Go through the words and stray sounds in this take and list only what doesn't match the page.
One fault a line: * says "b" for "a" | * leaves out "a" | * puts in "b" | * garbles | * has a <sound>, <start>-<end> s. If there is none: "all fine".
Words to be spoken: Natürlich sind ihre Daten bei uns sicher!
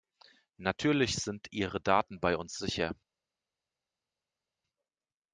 all fine